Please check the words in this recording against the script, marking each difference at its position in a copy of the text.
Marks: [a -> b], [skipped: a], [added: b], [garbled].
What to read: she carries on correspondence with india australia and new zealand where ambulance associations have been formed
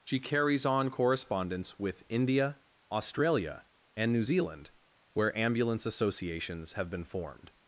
she carries on correspondence with india australia and new zealand where ambulance associations have been formed